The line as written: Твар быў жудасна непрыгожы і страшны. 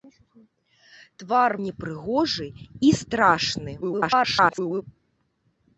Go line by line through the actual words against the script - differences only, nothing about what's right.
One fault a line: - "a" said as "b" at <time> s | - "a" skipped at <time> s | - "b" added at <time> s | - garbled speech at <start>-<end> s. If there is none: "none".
- "быў жудасна" skipped at 1.5 s
- garbled speech at 3.8-4.8 s